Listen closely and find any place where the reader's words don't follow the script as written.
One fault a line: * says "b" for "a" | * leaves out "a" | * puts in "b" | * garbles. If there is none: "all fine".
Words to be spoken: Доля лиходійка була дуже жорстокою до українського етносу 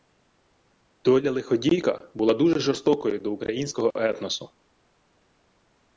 all fine